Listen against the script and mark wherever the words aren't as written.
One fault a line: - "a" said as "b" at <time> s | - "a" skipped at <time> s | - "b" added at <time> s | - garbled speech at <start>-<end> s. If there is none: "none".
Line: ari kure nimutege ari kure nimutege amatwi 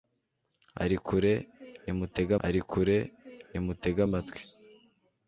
none